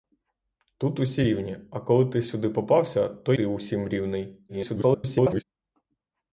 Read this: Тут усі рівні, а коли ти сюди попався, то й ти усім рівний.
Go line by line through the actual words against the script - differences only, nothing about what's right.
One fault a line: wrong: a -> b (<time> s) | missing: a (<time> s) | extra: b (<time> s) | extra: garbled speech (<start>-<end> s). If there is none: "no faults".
missing: й (3.3 s)
extra: garbled speech (4.5-5.4 s)